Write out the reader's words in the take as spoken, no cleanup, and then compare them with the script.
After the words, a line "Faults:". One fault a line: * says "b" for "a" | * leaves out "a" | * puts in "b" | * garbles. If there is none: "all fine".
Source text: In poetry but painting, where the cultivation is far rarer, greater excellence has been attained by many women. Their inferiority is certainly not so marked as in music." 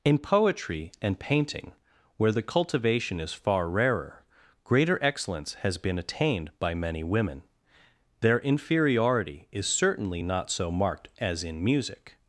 In poetry and painting, where the cultivation is far rarer, greater excellence has been attained by many women. Their inferiority is certainly not so marked as in music."
Faults:
* says "and" for "but"